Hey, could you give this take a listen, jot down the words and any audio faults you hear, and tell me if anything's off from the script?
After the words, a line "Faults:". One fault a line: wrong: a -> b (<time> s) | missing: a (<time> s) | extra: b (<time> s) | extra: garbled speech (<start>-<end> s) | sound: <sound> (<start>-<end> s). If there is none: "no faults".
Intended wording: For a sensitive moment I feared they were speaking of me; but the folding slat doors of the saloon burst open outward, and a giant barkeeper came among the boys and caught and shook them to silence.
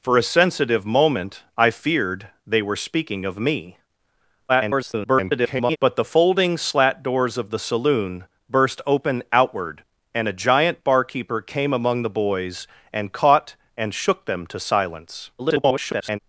For a sensitive moment I feared they were speaking of me; [garbled] but the folding slat doors of the saloon burst open outward, and a giant barkeeper came among the boys and caught and shook them to silence. [garbled]
Faults:
extra: garbled speech (4.5-5.8 s)
extra: garbled speech (15.4-16.2 s)